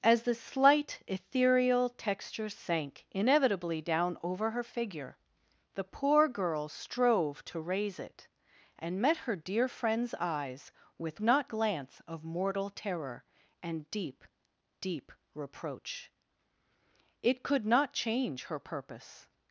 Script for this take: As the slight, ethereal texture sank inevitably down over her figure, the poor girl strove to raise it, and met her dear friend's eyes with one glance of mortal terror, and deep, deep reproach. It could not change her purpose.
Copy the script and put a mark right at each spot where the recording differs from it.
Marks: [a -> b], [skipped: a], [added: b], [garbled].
As the slight, ethereal texture sank inevitably down over her figure, the poor girl strove to raise it, and met her dear friend's eyes with [one -> not] glance of mortal terror, and deep, deep reproach. It could not change her purpose.